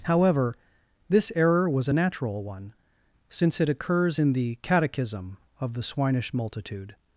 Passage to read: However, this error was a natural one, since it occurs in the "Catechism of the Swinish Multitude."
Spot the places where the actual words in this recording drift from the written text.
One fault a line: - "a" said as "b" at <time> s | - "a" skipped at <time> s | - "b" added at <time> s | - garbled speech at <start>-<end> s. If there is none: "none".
none